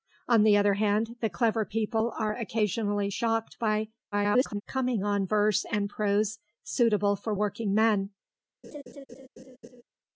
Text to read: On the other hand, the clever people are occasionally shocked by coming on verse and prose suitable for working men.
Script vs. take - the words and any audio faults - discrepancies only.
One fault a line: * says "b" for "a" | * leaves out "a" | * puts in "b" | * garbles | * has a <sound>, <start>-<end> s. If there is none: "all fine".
* garbles
* has a laugh, 8.6-9.8 s